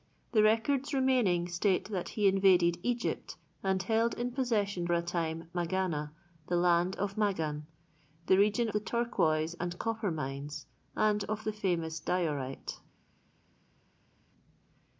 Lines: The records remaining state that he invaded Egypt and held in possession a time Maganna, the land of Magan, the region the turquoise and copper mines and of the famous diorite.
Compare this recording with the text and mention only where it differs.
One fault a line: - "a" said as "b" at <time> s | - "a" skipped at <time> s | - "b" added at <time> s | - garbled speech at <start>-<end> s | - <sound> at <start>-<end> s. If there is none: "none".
none